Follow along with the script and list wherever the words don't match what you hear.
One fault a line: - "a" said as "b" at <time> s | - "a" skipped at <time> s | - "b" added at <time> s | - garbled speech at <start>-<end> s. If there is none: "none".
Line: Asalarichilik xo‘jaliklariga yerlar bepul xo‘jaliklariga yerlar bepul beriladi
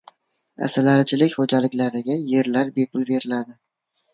- "xo‘jaliklariga yerlar bepul" skipped at 3.1 s